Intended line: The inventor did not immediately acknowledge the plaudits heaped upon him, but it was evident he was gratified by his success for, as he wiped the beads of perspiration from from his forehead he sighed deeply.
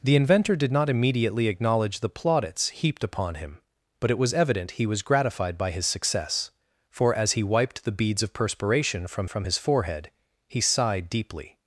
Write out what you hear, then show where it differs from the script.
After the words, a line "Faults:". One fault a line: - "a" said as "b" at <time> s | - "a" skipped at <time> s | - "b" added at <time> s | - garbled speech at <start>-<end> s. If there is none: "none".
The inventor did not immediately acknowledge the plaudits heaped upon him, but it was evident he was gratified by his success for, as he wiped the beads of perspiration from from his forehead he sighed deeply.
Faults:
none